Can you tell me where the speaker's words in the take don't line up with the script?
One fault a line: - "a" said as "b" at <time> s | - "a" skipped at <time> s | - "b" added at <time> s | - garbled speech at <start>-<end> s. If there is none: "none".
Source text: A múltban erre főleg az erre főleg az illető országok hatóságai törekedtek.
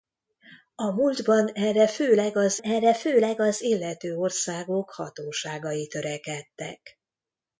none